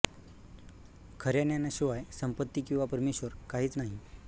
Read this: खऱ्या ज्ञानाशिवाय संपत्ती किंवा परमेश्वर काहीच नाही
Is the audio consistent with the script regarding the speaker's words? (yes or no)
yes